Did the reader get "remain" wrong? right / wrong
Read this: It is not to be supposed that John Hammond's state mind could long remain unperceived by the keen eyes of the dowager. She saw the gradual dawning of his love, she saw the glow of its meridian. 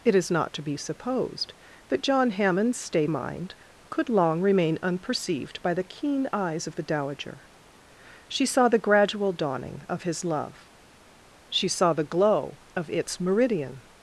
right